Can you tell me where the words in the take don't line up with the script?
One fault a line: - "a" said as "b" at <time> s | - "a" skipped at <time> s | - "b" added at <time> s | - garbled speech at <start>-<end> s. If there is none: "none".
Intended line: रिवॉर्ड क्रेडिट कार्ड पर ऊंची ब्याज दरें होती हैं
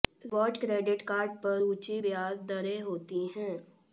none